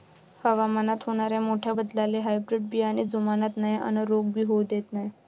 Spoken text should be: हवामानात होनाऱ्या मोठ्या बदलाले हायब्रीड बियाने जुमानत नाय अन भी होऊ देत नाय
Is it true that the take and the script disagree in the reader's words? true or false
true